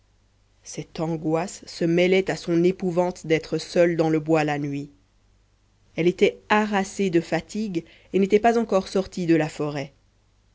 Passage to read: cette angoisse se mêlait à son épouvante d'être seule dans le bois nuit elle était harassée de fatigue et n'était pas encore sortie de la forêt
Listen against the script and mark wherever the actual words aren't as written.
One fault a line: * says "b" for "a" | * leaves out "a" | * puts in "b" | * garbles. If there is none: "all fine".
* puts in "la"